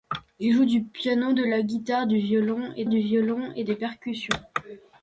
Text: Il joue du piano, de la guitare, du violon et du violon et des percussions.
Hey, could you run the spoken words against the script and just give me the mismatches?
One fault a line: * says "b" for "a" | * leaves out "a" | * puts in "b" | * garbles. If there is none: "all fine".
all fine